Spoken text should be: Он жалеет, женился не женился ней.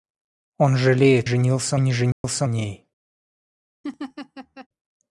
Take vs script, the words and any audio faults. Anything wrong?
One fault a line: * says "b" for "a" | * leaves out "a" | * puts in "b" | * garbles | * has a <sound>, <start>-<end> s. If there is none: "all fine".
* has a dropout, 2.1-2.2 s
* has a laugh, 3.8-4.7 s